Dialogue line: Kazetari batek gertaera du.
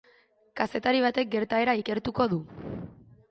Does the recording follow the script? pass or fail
fail